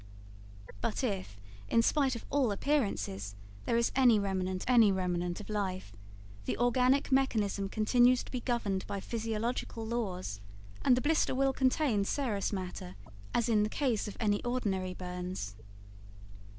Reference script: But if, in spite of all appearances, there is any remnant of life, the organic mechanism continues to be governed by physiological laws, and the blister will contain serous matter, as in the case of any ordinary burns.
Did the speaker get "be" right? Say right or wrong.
right